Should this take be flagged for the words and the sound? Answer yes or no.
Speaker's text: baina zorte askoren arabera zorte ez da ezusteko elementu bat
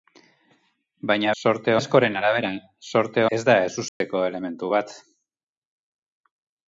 yes